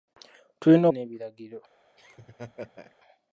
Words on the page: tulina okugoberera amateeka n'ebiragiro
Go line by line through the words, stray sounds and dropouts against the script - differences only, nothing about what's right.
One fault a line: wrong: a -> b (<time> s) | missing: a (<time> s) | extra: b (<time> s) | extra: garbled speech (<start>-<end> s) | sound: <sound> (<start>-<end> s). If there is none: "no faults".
missing: okugoberera amateeka (0.8 s)
sound: laugh (2.0-3.0 s)